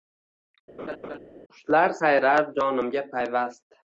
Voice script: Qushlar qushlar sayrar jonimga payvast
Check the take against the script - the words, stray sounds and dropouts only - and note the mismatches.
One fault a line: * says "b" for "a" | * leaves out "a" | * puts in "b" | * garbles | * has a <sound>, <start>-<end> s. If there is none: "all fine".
* has a laugh, 0.8-1.2 s
* leaves out "qushlar"